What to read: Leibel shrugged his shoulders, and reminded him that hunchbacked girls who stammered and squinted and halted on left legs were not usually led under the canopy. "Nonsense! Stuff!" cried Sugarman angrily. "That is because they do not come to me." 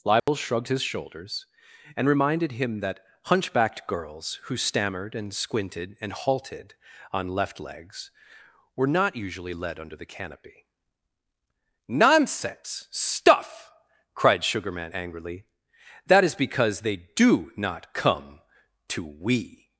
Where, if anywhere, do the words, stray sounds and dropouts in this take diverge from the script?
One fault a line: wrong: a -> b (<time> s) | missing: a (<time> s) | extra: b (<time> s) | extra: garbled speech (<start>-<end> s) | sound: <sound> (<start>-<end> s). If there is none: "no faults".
sound: dropout (0.2-0.3 s)
wrong: me -> we (19.0 s)